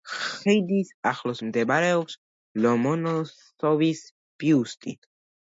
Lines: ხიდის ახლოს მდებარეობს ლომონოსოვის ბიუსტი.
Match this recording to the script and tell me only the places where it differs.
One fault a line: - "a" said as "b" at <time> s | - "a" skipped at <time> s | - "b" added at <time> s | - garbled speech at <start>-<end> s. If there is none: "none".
none